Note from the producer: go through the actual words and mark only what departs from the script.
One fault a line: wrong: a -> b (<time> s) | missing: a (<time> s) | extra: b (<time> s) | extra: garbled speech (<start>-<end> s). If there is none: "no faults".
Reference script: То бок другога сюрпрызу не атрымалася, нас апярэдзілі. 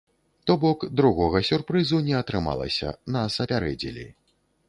no faults